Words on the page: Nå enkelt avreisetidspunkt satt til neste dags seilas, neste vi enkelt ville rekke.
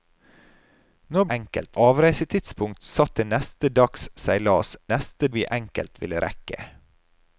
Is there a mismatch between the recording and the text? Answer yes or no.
no